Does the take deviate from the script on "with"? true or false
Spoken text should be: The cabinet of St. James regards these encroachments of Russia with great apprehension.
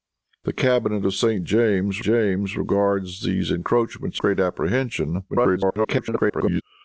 true